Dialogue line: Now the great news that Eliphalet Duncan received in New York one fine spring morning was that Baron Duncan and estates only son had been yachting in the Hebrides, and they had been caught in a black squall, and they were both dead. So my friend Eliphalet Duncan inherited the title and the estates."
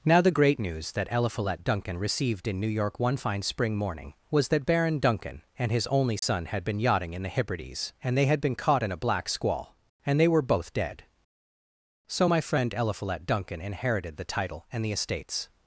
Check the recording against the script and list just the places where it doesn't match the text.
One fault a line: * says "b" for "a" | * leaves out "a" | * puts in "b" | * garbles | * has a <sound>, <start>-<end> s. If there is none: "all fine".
* says "his" for "estates"
* has a dropout, 6.2-6.2 s